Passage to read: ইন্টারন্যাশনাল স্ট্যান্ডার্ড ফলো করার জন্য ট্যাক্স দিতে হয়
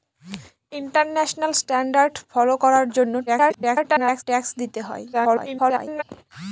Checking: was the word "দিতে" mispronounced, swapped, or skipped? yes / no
no